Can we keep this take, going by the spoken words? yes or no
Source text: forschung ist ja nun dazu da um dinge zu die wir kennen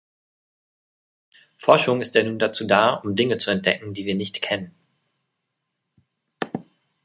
no